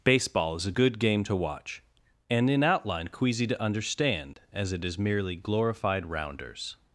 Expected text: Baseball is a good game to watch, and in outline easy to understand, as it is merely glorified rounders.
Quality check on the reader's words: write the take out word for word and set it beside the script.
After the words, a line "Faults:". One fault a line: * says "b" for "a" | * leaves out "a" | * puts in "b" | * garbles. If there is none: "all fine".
Baseball is a good game to watch, and in outline queasy to understand, as it is merely glorified rounders.
Faults:
* says "queasy" for "easy"